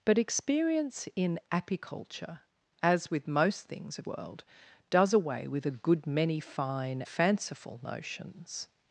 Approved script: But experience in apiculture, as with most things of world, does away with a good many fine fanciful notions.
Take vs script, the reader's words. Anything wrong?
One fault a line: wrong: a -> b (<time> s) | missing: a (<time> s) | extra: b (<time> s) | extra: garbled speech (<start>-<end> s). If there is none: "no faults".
no faults